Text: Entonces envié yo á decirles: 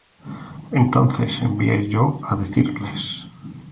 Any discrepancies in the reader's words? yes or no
no